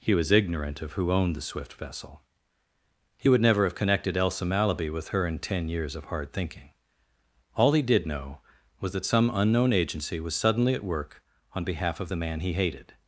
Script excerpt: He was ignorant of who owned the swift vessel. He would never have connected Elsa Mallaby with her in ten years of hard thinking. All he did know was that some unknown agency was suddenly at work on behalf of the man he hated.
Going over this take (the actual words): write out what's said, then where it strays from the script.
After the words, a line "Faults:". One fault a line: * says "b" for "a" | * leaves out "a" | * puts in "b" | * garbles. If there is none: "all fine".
He was ignorant of who owned the swift vessel. He would never have connected Elsa Mallaby with her in ten years of hard thinking. All he did know was that some unknown agency was suddenly at work on behalf of the man he hated.
Faults:
all fine